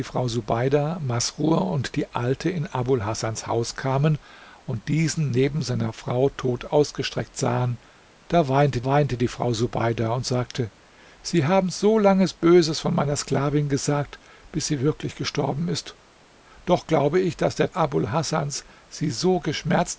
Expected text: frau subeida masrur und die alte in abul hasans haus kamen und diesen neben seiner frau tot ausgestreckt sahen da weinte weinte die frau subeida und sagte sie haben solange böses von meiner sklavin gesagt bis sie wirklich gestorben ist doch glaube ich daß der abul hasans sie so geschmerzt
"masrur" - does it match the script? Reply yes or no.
yes